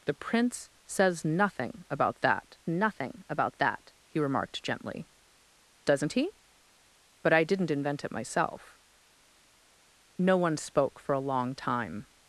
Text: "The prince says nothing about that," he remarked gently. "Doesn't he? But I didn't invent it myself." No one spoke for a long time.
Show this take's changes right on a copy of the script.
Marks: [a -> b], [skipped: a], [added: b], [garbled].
"The prince says nothing about that," [added: nothing about that] he remarked gently. "Doesn't he? But I didn't invent it myself." No one spoke for a long time.